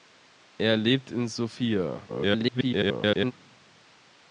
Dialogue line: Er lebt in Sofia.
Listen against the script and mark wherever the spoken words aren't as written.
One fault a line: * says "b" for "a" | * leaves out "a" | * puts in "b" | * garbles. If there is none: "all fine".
* garbles